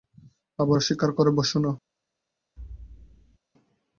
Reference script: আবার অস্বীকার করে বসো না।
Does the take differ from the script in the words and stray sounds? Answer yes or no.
yes